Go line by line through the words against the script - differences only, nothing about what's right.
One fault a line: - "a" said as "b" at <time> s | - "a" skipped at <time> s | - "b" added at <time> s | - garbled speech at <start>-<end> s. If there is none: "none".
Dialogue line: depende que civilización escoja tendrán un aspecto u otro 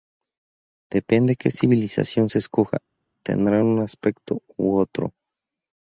- "se" added at 2.3 s